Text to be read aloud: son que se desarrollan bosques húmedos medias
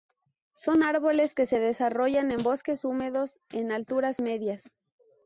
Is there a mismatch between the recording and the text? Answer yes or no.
yes